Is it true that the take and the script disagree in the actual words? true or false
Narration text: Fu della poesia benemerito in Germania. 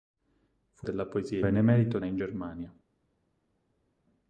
false